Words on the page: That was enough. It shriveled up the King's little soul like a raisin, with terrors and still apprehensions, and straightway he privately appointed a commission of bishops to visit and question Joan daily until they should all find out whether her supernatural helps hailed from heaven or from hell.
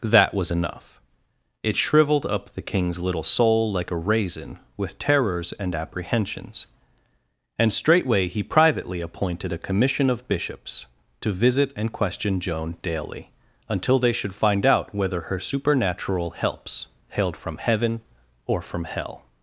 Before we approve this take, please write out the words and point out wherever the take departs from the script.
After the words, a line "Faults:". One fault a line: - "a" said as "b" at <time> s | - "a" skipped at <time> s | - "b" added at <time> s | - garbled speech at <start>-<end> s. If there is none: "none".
That was enough. It shriveled up the King's little soul like a raisin, with terrors and apprehensions, and straightway he privately appointed a commission of bishops to visit and question Joan daily until they should find out whether her supernatural helps hailed from heaven or from hell.
Faults:
- "still" skipped at 5.8 s
- "all" skipped at 14.3 s